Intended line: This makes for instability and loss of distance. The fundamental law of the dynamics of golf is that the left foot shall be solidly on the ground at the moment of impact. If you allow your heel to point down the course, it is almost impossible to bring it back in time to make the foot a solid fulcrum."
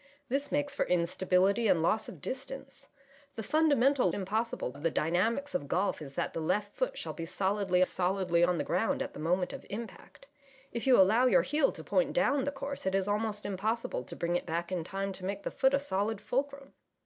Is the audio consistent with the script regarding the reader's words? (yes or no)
no